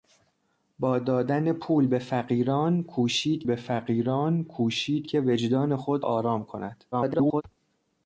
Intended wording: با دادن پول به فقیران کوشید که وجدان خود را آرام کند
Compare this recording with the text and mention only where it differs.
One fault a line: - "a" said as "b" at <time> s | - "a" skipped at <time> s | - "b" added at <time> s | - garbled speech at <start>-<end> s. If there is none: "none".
- "به فقیران کوشید" added at 3.4 s
- "را" skipped at 6.1 s
- garbled speech at 6.9-7.4 s